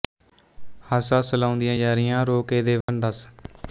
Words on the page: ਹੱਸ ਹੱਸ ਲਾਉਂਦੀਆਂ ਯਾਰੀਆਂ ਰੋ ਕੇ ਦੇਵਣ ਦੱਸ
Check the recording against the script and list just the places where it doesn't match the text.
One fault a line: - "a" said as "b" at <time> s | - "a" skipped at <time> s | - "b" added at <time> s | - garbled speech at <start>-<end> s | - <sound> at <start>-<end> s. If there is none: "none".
- dropout at 2.8-2.9 s